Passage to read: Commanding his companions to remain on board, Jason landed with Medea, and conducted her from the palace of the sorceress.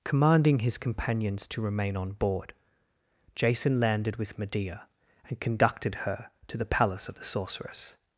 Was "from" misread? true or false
true